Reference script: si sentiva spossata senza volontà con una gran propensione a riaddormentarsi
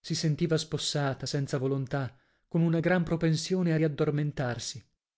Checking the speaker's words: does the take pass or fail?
pass